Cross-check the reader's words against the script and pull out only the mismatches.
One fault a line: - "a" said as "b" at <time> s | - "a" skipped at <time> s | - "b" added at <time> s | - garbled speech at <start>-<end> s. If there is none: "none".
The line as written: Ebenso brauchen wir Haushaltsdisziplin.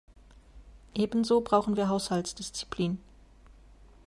none